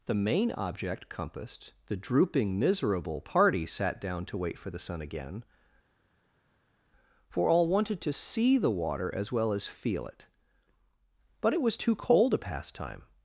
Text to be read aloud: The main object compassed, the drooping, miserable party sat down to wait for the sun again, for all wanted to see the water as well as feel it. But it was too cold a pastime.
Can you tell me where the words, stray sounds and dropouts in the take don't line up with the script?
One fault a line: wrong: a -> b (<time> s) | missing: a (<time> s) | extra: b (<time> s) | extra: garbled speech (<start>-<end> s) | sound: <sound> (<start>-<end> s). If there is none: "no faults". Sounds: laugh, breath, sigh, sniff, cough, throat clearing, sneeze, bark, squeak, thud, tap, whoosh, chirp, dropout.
no faults